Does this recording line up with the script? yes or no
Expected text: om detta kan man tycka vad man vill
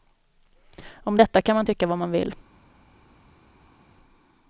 yes